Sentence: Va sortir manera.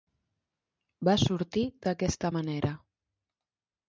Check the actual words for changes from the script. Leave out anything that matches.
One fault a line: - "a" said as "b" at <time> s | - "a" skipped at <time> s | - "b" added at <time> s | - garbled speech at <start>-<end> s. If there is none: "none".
- "d'aquesta" added at 1.9 s